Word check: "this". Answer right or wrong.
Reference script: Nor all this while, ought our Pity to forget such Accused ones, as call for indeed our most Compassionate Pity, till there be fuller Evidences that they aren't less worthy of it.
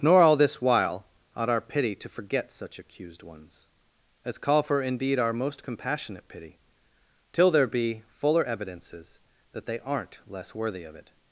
right